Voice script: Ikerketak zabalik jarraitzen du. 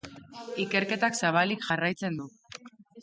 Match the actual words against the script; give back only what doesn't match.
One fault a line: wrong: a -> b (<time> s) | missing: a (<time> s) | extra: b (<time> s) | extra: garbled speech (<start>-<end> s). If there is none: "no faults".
no faults